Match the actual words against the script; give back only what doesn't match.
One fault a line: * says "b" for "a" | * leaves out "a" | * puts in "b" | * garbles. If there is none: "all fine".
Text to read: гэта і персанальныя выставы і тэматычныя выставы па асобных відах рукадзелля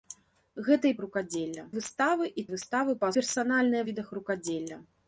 * says "рукадзелля" for "персанальныя"
* leaves out "тэматычныя"
* says "персанальныя" for "асобных"